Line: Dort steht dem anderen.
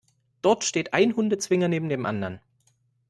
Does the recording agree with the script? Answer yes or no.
no